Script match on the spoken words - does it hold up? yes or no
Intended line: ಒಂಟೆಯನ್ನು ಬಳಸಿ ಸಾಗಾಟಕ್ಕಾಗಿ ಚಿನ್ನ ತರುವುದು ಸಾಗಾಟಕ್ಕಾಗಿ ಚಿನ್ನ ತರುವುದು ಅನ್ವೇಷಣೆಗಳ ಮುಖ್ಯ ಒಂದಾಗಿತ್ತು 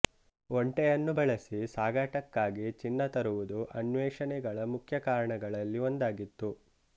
no